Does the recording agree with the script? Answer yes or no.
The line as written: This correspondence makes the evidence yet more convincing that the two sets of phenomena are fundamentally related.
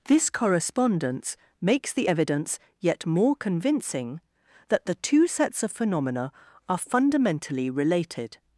yes